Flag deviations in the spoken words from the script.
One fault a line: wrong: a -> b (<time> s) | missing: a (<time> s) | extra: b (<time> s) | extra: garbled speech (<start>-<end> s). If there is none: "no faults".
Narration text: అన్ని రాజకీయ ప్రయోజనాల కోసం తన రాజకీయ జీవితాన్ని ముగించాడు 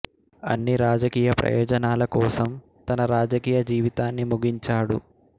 no faults